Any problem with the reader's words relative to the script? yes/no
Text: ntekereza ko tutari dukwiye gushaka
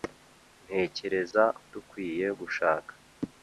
yes